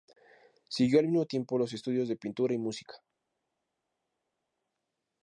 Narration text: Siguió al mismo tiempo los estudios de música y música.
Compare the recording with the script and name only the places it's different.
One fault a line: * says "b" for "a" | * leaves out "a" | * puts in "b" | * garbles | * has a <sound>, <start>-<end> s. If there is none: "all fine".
* says "pintura" for "música"